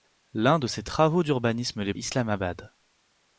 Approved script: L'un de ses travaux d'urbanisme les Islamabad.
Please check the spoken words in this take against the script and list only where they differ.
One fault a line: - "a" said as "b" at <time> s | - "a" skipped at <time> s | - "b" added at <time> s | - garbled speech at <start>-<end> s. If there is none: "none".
none